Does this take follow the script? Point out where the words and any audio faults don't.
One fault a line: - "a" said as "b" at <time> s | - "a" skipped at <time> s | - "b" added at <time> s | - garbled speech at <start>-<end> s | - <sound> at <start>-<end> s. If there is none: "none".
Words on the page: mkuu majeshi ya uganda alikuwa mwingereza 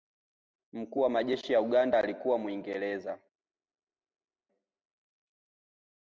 - "wa" added at 1.0 s